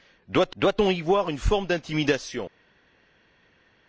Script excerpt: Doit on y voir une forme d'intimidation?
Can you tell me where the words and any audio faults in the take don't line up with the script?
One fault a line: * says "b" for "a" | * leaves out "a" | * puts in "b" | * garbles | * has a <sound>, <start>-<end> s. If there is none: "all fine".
* puts in "doit"